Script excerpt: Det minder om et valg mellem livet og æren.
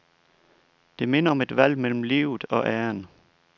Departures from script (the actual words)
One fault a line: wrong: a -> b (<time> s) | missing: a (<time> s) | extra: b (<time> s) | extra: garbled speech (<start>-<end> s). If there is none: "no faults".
no faults